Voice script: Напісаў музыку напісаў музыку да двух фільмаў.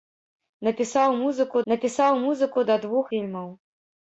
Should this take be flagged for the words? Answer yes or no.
no